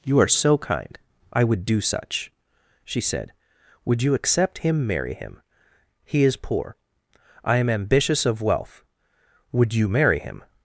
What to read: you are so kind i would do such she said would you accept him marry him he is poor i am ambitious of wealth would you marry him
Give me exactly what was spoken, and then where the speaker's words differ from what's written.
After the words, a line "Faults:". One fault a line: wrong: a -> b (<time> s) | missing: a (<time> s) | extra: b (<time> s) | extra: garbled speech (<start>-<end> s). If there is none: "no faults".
you are so kind i would do such she said would you accept him marry him he is poor i am ambitious of wealth would you marry him
Faults:
no faults